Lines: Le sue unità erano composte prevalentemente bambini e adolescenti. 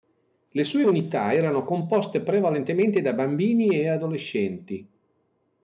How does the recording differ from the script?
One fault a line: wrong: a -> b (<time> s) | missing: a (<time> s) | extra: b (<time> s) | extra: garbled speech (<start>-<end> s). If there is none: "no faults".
extra: da (3.0 s)